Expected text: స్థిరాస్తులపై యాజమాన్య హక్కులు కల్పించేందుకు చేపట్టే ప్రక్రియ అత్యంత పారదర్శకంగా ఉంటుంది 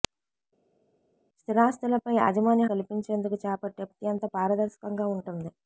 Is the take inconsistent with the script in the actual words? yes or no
yes